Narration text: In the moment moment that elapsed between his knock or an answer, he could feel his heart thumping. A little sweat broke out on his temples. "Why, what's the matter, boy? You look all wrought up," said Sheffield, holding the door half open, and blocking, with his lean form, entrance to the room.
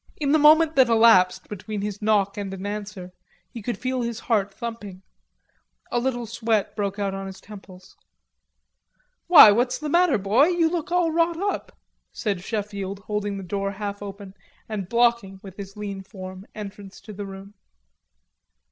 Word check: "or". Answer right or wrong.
wrong